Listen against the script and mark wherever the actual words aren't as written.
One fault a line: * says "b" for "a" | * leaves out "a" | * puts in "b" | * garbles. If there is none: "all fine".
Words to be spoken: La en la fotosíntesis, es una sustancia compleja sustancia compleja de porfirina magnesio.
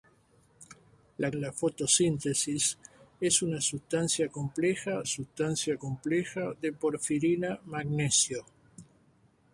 all fine